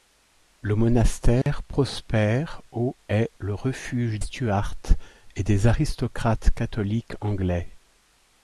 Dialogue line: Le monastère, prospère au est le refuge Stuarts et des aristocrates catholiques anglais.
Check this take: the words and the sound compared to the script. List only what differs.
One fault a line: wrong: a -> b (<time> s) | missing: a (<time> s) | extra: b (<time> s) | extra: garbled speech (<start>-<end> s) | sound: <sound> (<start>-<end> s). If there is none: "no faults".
sound: dropout (1.4-1.5 s)